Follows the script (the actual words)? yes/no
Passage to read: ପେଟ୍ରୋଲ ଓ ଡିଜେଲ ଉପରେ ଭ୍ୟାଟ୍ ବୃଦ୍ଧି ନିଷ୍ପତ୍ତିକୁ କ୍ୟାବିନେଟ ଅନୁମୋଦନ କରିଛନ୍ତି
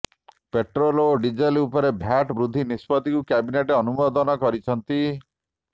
yes